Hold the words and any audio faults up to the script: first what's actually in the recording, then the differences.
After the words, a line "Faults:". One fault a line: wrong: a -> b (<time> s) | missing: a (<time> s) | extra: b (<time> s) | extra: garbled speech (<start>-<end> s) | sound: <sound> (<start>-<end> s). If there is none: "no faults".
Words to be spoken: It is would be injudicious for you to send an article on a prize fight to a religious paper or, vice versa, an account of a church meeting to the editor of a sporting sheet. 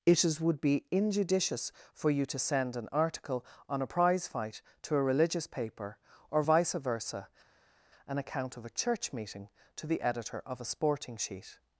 It is would be injudicious for you to send an article on a prize fight to a religious paper or, vice versa, an account of a church meeting to the editor of a sporting sheet.
Faults:
no faults